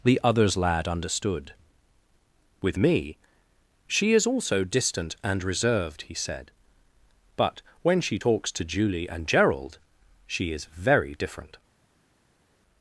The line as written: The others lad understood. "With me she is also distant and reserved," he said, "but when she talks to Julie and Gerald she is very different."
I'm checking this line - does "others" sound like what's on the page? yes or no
yes